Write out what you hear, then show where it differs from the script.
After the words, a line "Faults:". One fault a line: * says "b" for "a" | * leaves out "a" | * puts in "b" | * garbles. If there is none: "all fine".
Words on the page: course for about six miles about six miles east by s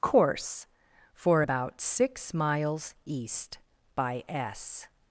course for about six miles east by s
Faults:
* leaves out "about six miles"